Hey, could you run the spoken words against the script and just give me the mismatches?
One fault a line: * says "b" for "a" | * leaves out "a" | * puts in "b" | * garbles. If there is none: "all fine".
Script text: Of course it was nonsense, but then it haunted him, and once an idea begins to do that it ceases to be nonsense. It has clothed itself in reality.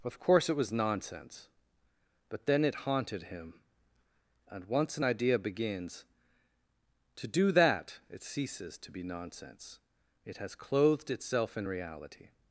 all fine